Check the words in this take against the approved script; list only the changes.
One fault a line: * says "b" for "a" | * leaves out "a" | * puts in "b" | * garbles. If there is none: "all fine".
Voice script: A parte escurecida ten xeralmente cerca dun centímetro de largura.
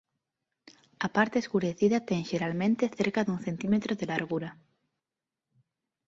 all fine